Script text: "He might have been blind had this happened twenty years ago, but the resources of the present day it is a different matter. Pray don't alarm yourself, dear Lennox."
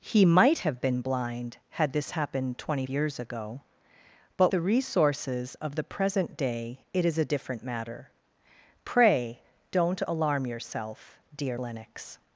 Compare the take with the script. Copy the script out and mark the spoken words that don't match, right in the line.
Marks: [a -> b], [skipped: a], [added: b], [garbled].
"He might have been blind had this happened twenty years ago, but the resources of the present day it is a different matter. Pray don't alarm yourself, dear Lennox."